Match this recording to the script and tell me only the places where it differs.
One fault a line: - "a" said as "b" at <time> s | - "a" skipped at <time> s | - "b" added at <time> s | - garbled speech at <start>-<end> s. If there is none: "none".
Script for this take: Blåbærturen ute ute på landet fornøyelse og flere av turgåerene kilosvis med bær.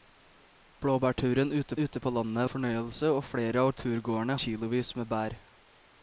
none